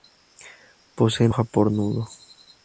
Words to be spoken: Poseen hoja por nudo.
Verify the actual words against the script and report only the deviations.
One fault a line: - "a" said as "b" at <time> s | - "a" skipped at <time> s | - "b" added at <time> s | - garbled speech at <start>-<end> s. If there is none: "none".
none